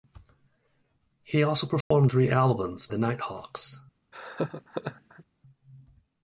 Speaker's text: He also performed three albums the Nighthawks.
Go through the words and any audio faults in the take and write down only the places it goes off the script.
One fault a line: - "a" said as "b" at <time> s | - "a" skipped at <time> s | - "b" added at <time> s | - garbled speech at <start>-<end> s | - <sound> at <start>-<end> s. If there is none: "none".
- dropout at 1.8-1.9 s
- laugh at 4.1-5.2 s